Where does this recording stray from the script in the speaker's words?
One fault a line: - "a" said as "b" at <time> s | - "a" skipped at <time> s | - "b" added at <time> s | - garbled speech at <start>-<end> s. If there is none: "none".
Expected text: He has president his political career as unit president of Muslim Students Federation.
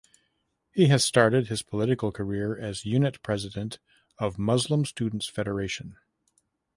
- "president" said as "started" at 1.1 s